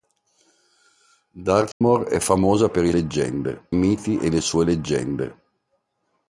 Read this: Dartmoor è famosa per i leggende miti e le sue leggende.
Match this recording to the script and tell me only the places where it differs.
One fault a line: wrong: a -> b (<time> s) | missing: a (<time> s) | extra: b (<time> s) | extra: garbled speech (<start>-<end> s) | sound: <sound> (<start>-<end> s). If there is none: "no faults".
sound: dropout (1.7-1.8 s)